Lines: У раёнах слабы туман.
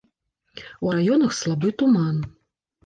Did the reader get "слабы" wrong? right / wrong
right